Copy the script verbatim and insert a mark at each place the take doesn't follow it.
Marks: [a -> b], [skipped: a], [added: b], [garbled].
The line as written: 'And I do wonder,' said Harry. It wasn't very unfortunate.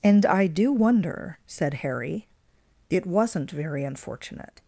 'And I do wonder,' said Harry. It wasn't very unfortunate.